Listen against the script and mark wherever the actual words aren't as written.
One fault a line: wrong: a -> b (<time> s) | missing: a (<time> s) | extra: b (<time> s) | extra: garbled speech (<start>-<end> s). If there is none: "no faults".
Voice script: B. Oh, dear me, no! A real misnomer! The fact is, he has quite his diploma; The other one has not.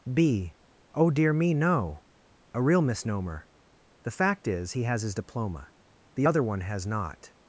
missing: quite (5.0 s)